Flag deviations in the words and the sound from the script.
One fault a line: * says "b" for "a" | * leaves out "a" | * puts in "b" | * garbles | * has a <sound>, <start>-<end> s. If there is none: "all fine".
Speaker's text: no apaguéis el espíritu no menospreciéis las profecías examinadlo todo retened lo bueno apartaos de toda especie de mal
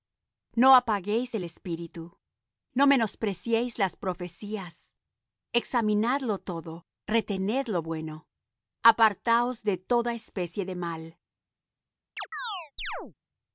* has a chirp, 12.2-13.1 s